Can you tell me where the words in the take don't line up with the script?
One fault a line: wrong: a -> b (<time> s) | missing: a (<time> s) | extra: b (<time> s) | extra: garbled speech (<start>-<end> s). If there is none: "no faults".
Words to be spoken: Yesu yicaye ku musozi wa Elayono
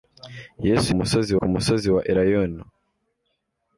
wrong: yicaye -> musozi (1.0 s)